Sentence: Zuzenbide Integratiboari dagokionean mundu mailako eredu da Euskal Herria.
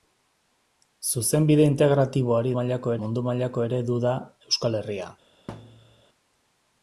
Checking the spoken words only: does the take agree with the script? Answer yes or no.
no